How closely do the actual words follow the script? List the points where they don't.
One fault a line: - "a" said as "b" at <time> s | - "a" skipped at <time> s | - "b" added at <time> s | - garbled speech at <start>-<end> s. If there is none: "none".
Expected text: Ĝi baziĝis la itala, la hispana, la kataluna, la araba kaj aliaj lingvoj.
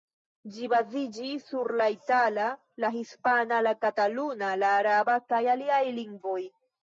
- "sur" added at 1.5 s